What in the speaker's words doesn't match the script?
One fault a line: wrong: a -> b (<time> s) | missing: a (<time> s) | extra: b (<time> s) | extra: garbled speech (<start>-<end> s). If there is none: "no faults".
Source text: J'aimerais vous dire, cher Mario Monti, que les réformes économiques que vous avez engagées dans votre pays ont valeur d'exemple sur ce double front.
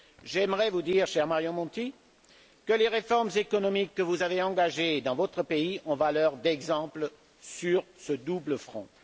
no faults